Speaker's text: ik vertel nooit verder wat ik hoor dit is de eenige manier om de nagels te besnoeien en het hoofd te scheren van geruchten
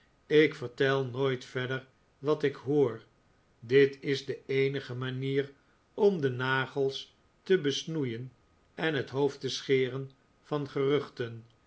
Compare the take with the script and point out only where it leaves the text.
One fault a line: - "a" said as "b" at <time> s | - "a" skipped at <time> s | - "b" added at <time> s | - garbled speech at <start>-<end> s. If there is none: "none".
none